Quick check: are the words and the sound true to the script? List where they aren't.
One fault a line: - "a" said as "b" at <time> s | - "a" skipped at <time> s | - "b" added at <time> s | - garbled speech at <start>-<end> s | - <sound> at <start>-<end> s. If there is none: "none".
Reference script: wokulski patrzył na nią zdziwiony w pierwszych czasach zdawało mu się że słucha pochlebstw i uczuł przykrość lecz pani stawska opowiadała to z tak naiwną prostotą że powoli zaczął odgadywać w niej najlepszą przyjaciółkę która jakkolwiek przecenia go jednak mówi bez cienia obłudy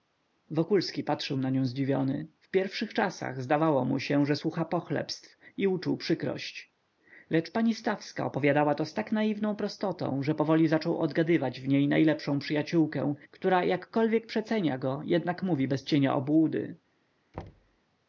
- thud at 17.3-17.8 s